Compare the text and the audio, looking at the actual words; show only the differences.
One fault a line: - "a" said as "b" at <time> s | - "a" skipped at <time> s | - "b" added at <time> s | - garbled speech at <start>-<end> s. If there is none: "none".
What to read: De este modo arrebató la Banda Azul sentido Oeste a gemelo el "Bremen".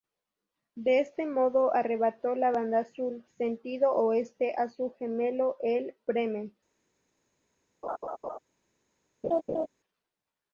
- "su" added at 4.7 s